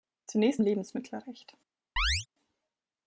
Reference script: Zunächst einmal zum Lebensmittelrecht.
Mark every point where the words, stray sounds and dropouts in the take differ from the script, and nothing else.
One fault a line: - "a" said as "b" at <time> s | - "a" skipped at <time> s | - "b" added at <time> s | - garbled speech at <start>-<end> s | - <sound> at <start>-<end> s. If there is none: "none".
- "einmal zum" skipped at 0.6 s
- chirp at 2.0-2.3 s